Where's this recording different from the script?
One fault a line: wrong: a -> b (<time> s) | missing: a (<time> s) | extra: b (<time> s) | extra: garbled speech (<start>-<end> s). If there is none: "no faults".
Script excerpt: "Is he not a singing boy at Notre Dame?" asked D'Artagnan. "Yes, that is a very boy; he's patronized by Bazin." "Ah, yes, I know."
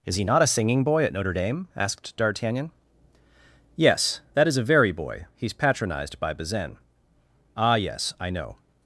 no faults